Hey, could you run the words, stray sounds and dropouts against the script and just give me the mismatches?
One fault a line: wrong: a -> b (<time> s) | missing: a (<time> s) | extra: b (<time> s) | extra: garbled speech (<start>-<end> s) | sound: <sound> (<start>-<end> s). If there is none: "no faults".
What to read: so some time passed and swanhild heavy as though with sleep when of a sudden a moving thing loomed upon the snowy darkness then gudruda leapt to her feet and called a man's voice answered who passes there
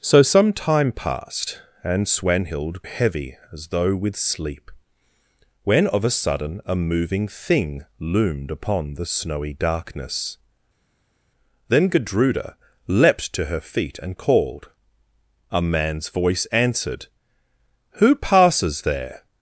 no faults